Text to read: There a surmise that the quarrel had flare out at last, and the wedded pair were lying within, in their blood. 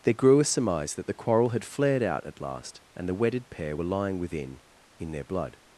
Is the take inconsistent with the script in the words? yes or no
yes